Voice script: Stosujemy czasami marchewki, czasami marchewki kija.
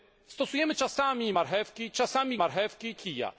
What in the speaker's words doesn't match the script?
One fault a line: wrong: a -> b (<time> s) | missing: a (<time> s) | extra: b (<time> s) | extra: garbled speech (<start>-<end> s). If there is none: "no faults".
no faults